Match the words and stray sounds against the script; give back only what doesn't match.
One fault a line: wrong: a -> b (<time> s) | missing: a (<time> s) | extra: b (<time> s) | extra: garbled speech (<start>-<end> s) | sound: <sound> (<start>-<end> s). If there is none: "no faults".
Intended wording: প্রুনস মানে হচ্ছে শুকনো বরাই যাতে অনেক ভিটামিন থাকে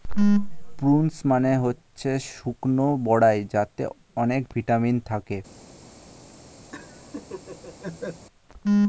sound: laugh (6.7-8.3 s)